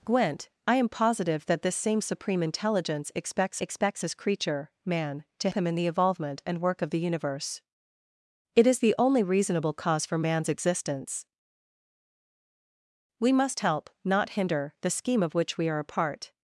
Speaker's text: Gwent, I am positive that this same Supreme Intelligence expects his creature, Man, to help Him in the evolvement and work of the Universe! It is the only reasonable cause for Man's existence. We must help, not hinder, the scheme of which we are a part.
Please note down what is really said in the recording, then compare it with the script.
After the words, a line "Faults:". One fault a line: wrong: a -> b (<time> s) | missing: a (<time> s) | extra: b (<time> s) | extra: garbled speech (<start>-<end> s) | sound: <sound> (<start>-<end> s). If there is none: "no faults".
Gwent, I am positive that this same Supreme Intelligence expects expects his creature, Man, to Him in the evolvement and work of the Universe! It is the only reasonable cause for Man's existence. We must help, not hinder, the scheme of which we are a part.
Faults:
extra: expects (3.6 s)
missing: help (5.5 s)